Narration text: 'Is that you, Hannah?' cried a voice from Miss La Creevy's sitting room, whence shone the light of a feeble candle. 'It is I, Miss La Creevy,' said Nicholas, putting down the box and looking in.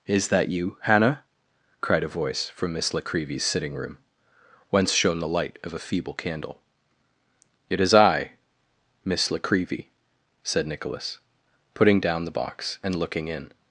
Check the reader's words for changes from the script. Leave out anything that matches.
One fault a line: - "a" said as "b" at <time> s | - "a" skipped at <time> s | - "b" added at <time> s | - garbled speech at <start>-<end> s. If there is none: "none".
none